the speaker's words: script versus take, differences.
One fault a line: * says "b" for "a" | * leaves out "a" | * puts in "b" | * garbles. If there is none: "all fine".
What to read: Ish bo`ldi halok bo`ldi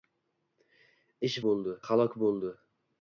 all fine